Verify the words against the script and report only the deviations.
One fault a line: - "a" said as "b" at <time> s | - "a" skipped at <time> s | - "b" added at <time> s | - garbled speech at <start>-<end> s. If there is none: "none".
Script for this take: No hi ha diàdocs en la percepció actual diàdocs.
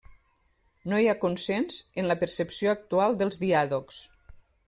- "diàdocs" said as "consens" at 1.2 s
- "dels" added at 3.2 s